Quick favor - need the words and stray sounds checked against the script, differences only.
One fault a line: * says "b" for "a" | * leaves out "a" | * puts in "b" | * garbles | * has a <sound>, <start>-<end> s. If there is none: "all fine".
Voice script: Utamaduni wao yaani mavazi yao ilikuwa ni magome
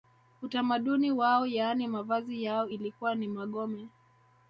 all fine